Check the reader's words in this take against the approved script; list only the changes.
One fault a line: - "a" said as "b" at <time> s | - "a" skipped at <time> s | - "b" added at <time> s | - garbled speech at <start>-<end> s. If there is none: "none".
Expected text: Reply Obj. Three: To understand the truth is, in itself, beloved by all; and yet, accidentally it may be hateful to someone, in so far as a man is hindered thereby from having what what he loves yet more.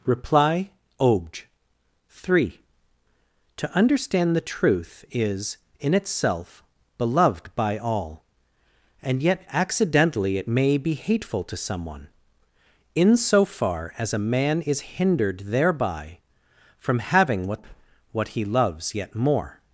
none